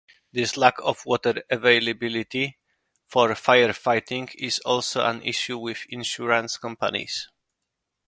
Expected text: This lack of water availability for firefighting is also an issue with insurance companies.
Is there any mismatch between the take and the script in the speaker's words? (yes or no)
no